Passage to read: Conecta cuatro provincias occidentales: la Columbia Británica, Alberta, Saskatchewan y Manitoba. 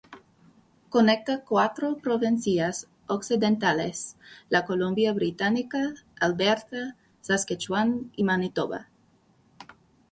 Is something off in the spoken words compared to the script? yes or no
no